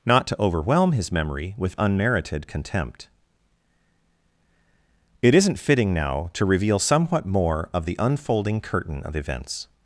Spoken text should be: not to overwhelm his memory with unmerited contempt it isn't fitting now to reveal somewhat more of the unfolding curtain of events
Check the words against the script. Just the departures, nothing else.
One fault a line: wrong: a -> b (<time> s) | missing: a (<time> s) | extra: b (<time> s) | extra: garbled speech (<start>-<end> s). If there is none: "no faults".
no faults